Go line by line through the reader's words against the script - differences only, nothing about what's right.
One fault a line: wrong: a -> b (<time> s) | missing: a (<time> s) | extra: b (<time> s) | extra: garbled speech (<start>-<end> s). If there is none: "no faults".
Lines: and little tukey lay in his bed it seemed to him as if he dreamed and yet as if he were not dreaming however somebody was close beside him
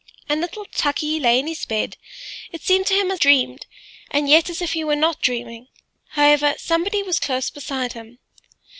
missing: if he (3.2 s)